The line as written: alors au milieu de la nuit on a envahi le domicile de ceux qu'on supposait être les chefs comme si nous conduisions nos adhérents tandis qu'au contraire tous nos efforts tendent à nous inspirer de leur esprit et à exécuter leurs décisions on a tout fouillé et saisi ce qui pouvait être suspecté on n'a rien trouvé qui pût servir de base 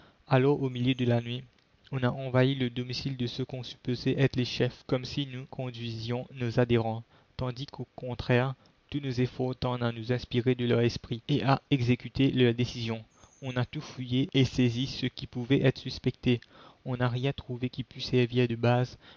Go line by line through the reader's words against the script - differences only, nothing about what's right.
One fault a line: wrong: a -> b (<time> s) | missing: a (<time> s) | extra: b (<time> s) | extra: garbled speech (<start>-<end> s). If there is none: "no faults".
no faults